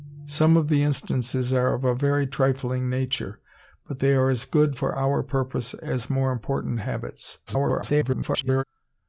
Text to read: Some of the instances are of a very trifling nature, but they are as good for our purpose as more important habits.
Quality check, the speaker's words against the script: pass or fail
fail